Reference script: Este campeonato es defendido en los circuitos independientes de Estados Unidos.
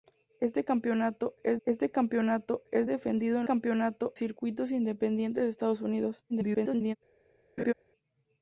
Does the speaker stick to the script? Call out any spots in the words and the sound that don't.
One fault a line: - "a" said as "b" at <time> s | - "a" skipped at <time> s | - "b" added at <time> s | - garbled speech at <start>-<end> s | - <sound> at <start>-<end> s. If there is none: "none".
- "este campeonato es" added at 1.6 s
- "los" said as "campeonato" at 3.4 s
- garbled speech at 6.3-7.0 s
- laugh at 7.6-7.7 s